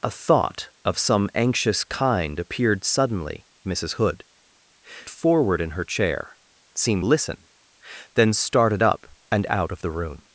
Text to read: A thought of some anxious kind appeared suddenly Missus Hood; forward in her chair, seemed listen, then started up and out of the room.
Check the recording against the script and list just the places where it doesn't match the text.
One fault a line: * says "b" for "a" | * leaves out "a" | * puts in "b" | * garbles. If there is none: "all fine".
all fine